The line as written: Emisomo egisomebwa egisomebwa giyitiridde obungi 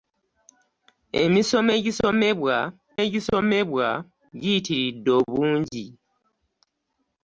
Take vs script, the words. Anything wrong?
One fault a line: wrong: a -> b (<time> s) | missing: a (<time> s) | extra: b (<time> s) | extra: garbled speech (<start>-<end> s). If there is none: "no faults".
no faults